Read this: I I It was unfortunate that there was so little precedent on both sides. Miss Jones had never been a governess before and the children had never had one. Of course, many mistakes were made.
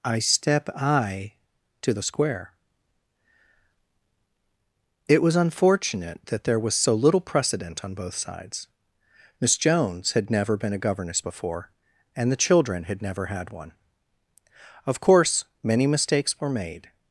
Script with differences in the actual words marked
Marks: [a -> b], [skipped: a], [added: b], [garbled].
I [added: step] I [added: to the square] It was unfortunate that there was so little precedent on both sides. Miss Jones had never been a governess before and the children had never had one. Of course, many mistakes were made.